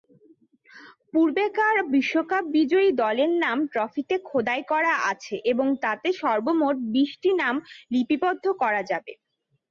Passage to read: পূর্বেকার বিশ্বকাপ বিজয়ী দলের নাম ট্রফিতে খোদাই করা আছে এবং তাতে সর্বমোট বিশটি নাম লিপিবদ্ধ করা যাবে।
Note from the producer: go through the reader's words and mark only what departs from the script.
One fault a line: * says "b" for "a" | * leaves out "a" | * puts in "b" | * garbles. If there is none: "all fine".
all fine